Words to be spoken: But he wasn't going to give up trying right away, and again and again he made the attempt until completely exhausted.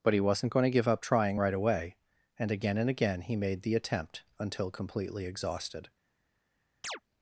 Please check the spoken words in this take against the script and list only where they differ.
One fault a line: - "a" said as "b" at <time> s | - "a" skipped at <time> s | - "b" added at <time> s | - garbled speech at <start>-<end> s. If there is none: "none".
none